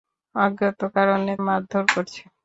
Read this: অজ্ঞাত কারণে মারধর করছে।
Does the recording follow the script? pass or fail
pass